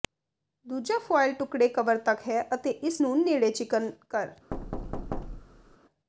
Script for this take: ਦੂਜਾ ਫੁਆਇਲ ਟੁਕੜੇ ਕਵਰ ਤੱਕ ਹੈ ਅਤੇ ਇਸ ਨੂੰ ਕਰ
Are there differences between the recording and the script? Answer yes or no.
yes